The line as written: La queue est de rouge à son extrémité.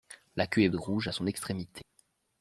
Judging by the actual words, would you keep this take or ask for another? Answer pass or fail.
pass